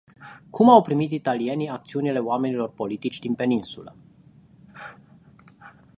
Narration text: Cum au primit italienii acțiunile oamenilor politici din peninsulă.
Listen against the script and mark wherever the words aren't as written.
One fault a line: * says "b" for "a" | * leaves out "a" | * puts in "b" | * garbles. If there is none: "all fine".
all fine